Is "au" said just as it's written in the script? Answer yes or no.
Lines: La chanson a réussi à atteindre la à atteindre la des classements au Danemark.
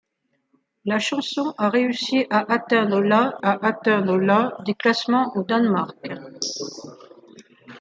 yes